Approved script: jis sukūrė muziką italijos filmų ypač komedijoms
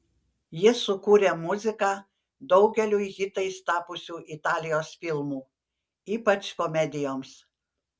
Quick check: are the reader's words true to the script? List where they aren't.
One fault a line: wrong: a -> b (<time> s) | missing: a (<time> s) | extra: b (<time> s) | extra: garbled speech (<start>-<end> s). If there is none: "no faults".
extra: daugeliui hitais tapusių (2.5 s)